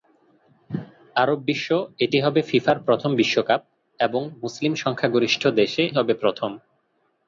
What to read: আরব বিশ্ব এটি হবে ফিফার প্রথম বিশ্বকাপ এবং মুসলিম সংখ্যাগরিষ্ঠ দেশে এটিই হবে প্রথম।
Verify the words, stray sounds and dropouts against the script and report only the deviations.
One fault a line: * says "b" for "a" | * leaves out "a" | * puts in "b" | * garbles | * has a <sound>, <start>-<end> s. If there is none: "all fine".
* leaves out "এটিই"